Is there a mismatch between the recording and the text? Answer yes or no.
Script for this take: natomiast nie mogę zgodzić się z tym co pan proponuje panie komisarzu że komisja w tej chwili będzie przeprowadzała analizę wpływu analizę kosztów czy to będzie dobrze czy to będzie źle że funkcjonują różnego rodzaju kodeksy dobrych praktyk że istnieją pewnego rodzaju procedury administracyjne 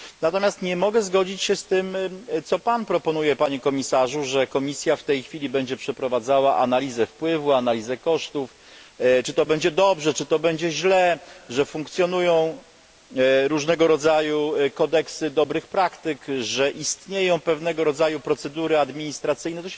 no